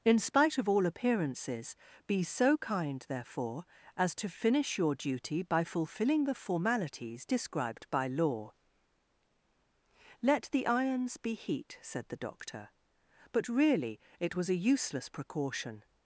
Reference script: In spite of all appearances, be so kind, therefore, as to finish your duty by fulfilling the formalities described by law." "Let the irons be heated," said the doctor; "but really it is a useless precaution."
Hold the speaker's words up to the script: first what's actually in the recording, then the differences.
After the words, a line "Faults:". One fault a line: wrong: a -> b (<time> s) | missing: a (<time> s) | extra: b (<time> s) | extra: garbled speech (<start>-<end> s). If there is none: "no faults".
In spite of all appearances, be so kind, therefore, as to finish your duty by fulfilling the formalities described by law." "Let the irons be heat," said the doctor; "but really it was a useless precaution."
Faults:
wrong: heated -> heat (11.3 s)
wrong: is -> was (14.3 s)